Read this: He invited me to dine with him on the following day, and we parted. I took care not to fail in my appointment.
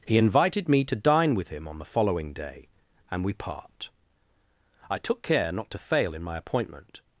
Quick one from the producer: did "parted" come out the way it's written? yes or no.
no